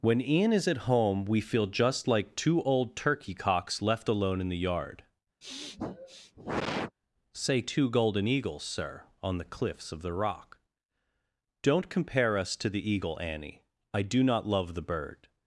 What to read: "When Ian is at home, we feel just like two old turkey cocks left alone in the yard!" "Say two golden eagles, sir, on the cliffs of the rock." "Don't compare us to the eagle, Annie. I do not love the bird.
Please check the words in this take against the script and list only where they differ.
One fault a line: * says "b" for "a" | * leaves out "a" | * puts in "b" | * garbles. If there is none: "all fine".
all fine